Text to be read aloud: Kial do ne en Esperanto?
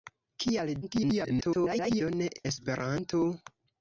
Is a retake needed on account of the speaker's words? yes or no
yes